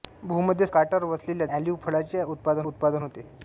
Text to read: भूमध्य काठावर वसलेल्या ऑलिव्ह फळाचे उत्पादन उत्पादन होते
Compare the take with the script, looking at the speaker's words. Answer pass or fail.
pass